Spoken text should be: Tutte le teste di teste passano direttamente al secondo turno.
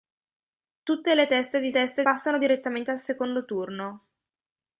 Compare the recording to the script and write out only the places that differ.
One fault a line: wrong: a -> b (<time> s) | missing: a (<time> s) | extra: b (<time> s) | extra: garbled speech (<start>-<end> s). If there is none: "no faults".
no faults